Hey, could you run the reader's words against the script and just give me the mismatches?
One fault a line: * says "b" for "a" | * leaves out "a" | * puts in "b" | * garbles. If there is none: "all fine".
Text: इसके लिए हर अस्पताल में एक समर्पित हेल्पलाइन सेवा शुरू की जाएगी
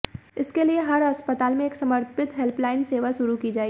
all fine